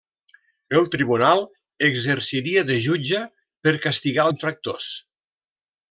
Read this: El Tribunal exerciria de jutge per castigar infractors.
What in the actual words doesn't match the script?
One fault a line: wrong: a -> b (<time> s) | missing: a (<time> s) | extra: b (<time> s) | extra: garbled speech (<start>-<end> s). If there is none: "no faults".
no faults